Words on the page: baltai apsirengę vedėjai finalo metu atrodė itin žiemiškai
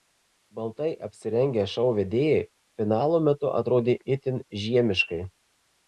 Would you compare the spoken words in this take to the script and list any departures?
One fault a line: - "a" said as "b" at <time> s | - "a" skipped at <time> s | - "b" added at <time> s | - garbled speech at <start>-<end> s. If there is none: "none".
- "šou" added at 1.8 s